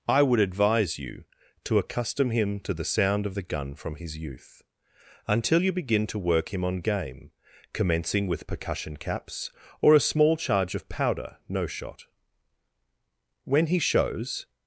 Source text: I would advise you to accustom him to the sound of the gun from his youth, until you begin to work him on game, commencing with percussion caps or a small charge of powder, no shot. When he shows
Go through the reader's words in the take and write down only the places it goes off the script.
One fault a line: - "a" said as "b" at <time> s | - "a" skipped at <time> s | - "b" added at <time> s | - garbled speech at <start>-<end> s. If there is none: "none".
none